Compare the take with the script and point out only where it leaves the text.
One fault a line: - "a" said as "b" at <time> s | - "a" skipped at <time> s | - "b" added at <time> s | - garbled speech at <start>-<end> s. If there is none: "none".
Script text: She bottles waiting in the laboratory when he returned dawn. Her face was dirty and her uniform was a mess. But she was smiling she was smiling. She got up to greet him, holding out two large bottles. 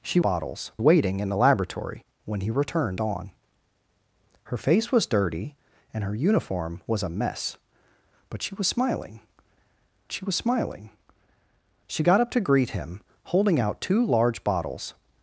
none